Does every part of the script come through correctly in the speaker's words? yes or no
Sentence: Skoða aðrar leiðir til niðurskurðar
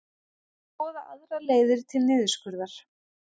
yes